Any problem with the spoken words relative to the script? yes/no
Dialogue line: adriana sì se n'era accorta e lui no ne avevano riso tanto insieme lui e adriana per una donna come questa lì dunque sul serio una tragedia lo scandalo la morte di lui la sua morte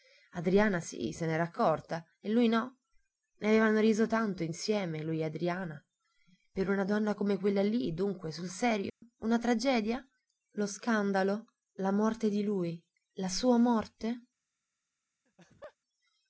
yes